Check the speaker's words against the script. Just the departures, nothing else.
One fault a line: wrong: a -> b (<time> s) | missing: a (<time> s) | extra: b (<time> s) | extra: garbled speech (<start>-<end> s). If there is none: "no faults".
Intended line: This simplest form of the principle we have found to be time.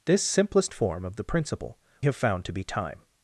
missing: we (1.8 s)